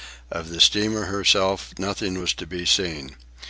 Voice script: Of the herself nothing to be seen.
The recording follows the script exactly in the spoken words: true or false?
false